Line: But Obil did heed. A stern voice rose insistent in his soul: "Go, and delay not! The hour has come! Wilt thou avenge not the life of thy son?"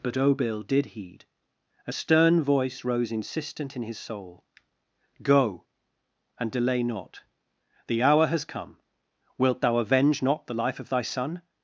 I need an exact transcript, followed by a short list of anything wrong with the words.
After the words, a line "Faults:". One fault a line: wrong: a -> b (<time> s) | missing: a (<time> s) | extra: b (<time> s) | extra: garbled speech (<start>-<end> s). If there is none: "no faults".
But Obil did heed. A stern voice rose insistent in his soul: "Go, and delay not! The hour has come! Wilt thou avenge not the life of thy son?"
Faults:
no faults